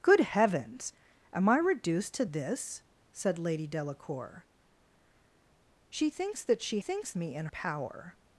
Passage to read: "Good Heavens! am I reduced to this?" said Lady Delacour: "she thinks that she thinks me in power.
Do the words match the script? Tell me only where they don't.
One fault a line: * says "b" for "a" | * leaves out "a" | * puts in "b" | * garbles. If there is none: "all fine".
all fine